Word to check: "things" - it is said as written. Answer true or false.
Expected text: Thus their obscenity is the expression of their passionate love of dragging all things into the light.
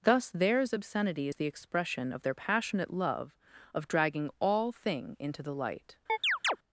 false